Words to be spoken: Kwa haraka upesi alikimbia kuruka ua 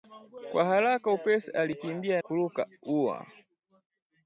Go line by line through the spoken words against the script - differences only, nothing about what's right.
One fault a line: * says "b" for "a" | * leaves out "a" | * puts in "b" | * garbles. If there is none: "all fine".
all fine